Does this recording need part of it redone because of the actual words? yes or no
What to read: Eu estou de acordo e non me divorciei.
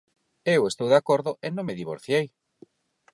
no